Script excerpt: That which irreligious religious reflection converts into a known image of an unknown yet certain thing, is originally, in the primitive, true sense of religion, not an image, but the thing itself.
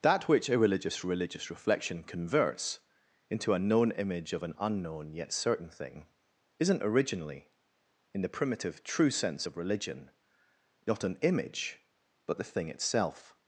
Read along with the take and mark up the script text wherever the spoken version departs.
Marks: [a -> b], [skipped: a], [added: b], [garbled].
That which irreligious religious reflection converts into a known image of an unknown yet certain thing, [is -> isn't] originally, in the primitive, true sense of religion, not an image, but the thing itself.